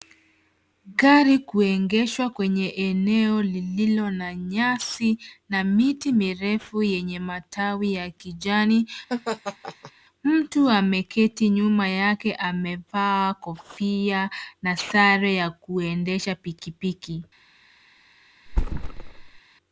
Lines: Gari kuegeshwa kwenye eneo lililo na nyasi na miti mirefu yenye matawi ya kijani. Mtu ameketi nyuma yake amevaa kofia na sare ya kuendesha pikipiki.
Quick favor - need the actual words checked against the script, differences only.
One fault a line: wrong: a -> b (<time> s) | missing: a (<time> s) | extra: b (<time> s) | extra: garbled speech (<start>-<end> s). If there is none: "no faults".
no faults